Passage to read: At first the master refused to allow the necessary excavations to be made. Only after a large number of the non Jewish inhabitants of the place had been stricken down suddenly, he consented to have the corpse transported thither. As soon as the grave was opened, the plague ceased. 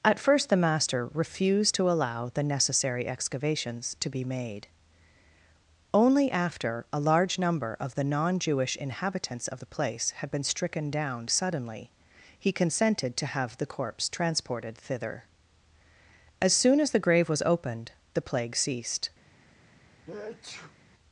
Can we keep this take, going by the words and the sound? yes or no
no